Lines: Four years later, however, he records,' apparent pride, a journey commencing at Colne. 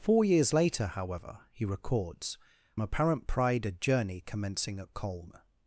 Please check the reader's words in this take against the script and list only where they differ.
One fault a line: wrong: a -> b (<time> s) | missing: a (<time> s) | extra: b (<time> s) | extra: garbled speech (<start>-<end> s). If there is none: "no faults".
no faults